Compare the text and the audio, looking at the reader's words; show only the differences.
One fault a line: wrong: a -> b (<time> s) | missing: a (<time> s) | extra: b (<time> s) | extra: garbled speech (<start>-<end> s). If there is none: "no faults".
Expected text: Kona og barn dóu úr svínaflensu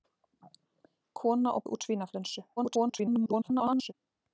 missing: barn dóu (1.6 s)
extra: garbled speech (2.6-3.9 s)